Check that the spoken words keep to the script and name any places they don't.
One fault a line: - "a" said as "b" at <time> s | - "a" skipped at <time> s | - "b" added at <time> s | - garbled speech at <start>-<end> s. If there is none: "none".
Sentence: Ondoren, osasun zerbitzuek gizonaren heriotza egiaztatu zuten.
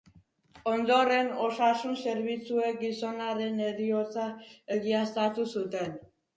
none